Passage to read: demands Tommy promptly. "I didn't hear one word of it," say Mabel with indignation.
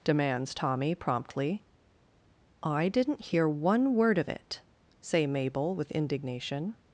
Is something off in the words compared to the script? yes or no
no